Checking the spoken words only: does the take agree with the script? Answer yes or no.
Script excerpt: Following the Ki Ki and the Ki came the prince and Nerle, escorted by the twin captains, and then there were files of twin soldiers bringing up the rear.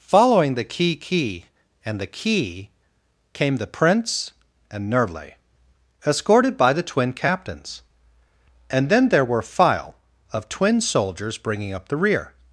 no